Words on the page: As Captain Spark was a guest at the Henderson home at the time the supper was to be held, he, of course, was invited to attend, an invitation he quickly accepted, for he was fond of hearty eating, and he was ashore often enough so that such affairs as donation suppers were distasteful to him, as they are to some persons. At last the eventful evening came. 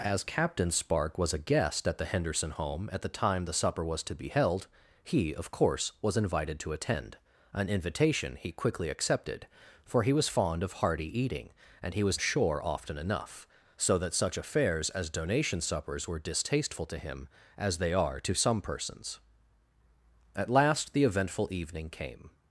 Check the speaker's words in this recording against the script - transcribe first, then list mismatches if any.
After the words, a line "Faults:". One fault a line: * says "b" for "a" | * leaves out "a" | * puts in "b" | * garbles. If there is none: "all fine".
As Captain Spark was a guest at the Henderson home at the time the supper was to be held, he, of course, was invited to attend, an invitation he quickly accepted, for he was fond of hearty eating, and he was ashore often enough so that such affairs as donation suppers were distasteful to him, as they are to some persons. At last the eventful evening came.
Faults:
all fine